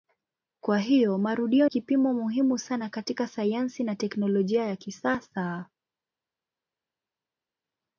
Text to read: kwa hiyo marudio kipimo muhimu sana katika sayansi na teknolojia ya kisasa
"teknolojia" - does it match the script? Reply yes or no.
yes